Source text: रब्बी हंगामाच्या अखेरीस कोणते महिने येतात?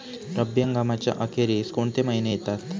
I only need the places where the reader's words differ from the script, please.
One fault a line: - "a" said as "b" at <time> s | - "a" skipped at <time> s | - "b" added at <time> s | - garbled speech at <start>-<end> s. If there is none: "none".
none